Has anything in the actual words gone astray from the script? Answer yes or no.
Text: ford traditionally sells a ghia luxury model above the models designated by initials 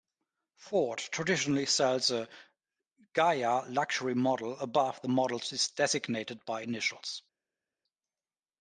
no